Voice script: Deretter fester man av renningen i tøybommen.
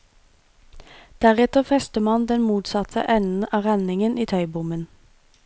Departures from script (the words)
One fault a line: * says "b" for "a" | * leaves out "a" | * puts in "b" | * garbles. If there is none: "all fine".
* puts in "den motsatte enden"